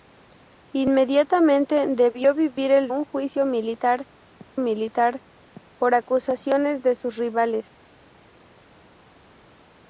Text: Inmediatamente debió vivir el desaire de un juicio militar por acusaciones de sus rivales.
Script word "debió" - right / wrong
right